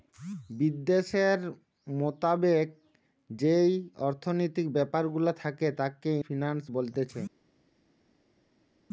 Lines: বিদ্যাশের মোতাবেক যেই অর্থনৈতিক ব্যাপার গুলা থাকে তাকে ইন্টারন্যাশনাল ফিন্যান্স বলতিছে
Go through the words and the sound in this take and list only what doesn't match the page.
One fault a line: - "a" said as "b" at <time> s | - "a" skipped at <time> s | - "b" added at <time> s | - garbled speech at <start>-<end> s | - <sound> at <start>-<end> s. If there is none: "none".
- "ইন্টারন্যাশনাল" skipped at 6.1 s